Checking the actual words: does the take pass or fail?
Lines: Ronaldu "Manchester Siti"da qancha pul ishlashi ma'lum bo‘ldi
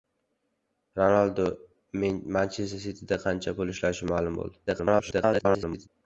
fail